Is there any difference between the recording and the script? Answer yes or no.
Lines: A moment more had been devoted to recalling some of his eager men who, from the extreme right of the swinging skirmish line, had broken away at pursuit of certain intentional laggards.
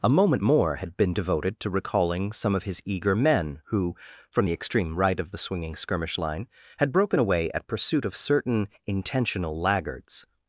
no